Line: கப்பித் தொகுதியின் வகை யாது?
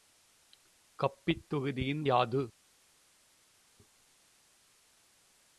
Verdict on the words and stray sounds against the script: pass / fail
fail